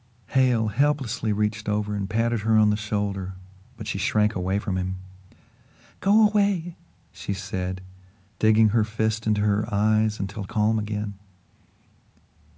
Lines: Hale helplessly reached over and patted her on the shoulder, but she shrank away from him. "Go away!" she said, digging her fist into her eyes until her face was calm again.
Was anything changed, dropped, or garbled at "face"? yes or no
yes